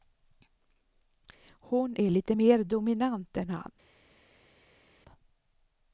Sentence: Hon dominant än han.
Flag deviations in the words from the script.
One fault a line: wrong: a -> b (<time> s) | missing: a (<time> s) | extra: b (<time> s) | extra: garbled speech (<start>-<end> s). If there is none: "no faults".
extra: är lite mer (2.0 s)